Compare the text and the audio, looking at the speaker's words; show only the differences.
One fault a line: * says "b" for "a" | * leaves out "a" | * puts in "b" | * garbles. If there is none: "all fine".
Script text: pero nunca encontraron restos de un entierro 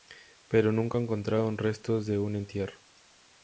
all fine